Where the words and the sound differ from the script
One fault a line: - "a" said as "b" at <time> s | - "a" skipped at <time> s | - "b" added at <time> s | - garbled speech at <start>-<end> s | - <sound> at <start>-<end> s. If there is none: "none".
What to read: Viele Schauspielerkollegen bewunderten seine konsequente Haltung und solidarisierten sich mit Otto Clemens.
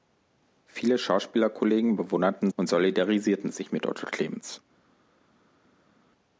- "seine konsequente Haltung" skipped at 2.5 s